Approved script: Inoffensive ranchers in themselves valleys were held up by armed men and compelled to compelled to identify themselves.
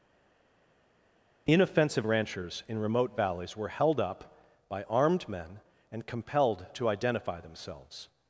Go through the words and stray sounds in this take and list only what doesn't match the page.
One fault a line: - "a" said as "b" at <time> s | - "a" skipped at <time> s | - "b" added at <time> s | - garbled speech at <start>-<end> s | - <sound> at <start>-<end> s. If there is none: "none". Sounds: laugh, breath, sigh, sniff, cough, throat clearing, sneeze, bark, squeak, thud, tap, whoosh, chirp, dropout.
- "themselves" said as "remote" at 2.8 s
- "compelled to" skipped at 6.9 s